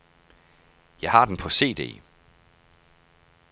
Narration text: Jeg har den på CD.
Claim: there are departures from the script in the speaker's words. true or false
false